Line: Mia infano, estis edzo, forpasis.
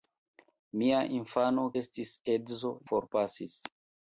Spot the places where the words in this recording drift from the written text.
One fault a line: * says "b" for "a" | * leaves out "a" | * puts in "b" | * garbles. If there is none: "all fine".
all fine